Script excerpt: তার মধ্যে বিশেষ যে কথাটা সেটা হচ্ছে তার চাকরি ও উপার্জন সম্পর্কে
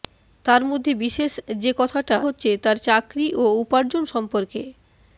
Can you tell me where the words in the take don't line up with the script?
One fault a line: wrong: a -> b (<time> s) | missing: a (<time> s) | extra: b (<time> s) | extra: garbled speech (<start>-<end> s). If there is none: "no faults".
missing: সেটা (2.2 s)